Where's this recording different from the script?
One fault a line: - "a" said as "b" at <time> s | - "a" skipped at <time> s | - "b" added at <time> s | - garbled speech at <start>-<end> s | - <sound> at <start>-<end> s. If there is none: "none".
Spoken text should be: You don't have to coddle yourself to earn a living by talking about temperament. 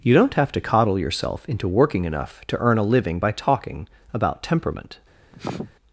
- "into working enough" added at 1.5 s
- sniff at 5.3-5.7 s